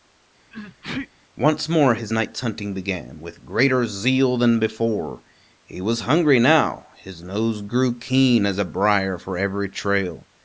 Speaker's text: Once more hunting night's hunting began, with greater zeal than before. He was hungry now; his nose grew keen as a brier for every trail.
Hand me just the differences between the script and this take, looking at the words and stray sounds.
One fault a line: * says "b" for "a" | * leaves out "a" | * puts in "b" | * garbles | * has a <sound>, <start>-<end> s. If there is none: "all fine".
* has a sneeze, 0.5-1.1 s
* says "his" for "hunting"